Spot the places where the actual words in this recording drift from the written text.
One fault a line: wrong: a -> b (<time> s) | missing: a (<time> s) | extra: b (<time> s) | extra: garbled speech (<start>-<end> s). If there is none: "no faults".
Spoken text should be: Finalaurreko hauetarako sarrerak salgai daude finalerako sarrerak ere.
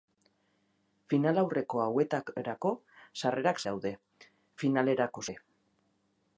missing: salgai (3.6 s)
missing: sarrerak (5.3 s)